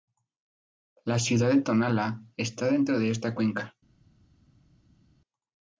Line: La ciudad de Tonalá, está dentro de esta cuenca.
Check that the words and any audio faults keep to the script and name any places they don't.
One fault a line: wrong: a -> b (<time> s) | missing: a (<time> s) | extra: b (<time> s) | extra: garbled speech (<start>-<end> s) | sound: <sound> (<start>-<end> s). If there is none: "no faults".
no faults